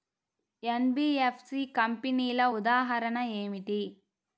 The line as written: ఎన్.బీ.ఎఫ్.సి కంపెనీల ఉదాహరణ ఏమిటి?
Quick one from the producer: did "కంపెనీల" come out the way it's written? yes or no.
yes